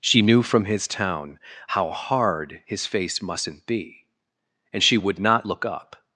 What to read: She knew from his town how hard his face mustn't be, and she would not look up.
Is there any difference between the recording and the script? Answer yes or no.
no